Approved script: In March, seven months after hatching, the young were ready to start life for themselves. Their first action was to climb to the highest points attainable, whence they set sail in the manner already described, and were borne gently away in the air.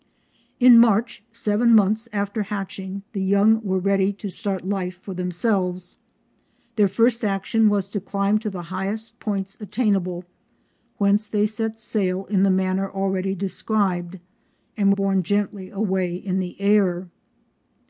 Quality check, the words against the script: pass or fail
fail